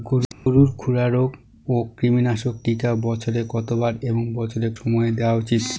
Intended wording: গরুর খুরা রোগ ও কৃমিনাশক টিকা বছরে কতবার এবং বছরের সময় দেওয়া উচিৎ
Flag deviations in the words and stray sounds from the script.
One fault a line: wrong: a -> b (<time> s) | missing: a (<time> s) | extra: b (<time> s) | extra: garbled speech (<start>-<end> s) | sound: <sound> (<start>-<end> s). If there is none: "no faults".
sound: dropout (0.3-0.5 s)